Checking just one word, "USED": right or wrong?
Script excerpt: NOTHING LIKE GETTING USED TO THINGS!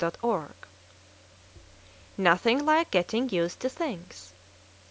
right